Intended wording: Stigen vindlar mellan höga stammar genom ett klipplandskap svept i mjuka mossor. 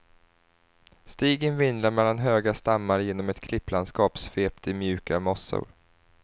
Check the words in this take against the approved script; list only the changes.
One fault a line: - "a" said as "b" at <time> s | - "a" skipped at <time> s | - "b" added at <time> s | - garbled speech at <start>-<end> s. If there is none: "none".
none